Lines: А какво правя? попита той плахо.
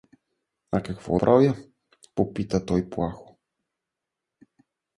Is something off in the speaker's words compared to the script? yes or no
no